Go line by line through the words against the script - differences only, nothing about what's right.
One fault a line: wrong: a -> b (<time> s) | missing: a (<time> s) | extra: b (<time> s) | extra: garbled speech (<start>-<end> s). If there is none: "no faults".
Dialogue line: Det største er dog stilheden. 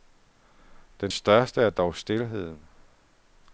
wrong: Det -> Den (1.0 s)